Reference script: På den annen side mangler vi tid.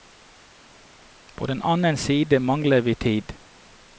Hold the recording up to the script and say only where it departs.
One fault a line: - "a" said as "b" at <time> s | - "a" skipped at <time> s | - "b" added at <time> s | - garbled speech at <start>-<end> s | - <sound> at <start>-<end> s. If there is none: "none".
none